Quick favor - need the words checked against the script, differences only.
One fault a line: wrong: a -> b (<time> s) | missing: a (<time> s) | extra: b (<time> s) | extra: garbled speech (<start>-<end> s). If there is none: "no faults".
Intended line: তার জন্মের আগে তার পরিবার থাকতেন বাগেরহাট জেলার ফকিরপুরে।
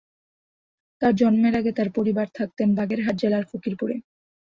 no faults